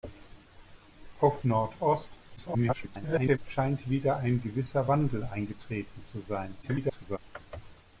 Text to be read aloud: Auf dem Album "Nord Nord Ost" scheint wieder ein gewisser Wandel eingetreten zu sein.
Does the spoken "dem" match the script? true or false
false